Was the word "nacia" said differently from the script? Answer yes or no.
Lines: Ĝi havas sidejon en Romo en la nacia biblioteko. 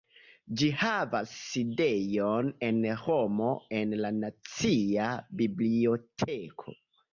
no